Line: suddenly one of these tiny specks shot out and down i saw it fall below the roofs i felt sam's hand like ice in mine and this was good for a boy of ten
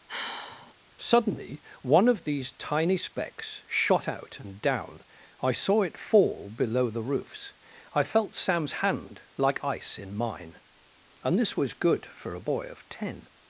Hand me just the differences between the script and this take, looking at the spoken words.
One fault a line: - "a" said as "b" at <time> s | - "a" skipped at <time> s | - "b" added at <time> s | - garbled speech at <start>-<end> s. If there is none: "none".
none